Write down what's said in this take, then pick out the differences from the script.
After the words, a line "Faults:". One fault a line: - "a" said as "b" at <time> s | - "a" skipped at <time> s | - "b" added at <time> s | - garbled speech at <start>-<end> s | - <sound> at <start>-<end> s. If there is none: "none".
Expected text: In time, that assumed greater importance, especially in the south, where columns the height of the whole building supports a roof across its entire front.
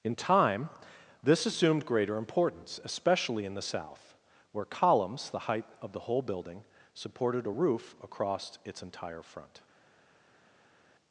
In time, this assumed greater importance, especially in the south, where columns the height of the whole building supported a roof across its entire front.
Faults:
- "that" said as "this" at 1.2 s
- "supports" said as "supported" at 6.9 s